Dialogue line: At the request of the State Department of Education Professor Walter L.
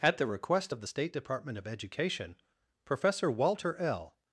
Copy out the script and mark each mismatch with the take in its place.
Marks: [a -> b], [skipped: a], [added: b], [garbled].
At the request of the State Department of Education Professor Walter L.